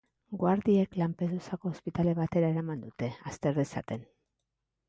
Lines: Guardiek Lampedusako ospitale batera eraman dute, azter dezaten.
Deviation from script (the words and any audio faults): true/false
false